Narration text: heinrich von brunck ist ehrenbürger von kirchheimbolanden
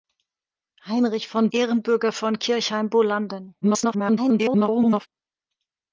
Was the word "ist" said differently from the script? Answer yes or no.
yes